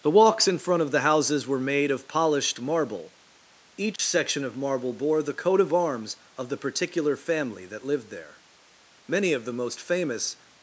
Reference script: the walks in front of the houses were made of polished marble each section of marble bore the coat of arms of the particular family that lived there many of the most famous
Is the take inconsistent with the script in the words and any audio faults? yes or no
yes